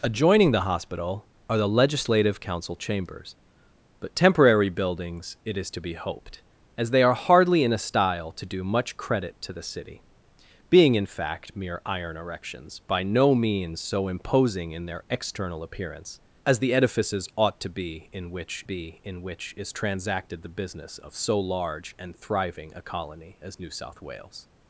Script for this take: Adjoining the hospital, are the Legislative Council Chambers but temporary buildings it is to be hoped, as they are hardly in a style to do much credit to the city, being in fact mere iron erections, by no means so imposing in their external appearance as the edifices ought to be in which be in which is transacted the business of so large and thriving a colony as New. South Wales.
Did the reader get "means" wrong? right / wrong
right